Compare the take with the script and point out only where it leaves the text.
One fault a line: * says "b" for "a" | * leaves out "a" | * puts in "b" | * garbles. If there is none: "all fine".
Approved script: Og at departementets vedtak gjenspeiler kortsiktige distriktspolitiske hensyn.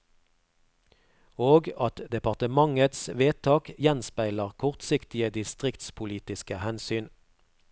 all fine